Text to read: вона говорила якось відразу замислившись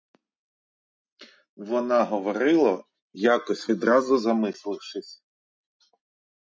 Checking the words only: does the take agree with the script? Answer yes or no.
yes